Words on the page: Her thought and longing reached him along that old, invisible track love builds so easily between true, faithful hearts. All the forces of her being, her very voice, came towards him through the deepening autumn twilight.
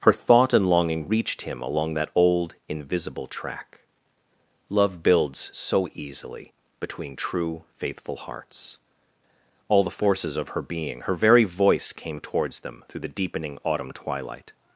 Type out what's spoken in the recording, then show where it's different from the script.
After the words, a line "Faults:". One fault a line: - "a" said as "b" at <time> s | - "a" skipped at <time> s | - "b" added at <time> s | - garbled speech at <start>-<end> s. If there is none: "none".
Her thought and longing reached him along that old, invisible track love builds so easily between true, faithful hearts. All the forces of her being, her very voice, came towards them through the deepening autumn twilight.
Faults:
- "him" said as "them" at 12.6 s